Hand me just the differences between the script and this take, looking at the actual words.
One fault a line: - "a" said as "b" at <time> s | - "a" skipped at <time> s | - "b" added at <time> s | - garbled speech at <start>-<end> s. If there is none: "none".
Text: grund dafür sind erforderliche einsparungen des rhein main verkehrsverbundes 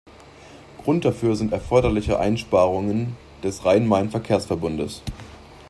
none